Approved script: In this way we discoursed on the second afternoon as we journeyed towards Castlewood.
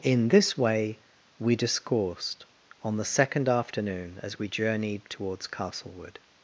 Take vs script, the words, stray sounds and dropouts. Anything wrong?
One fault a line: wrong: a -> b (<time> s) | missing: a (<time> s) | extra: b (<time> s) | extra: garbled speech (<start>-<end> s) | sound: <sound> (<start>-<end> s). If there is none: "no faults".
no faults